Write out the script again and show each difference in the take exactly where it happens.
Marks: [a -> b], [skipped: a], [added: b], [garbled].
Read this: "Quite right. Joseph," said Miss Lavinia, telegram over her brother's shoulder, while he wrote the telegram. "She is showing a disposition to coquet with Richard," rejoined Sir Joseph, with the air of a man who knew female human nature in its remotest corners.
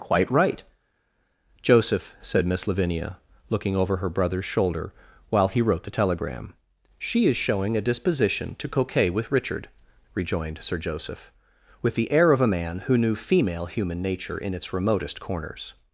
"Quite right. Joseph," said Miss Lavinia, [telegram -> looking] over her brother's shoulder, while he wrote the telegram. "She is showing a disposition to coquet with Richard," rejoined Sir Joseph, with the air of a man who knew female human nature in its remotest corners.